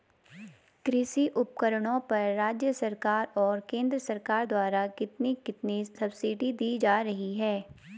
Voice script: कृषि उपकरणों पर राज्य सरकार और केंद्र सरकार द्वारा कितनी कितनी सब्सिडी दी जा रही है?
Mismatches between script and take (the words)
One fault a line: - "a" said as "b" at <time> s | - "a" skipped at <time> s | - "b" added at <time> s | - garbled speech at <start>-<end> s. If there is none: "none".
none